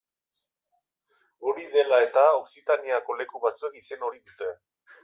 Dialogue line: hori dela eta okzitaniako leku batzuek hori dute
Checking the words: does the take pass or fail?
fail